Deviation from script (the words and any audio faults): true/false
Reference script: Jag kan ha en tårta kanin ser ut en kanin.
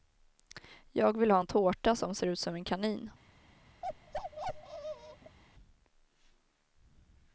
true